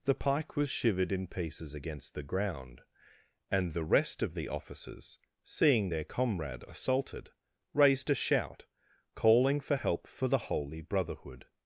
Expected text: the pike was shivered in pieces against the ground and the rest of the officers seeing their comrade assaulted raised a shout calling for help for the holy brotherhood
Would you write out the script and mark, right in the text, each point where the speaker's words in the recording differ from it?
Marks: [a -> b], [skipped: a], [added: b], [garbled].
the pike was shivered in pieces against the ground and the rest of the officers seeing their comrade assaulted raised a shout calling for help for the holy brotherhood